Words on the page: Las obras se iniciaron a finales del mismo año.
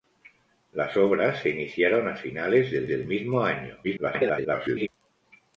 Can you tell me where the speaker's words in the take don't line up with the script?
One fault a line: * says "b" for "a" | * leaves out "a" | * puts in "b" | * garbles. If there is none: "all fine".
* puts in "del"
* garbles